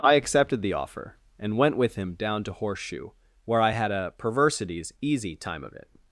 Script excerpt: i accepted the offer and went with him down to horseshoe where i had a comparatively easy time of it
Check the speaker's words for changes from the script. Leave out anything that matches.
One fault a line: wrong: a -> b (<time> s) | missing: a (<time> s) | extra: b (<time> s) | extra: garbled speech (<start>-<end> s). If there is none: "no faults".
wrong: comparatively -> perversities (4.2 s)